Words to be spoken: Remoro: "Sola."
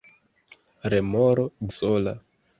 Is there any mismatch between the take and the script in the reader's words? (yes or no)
no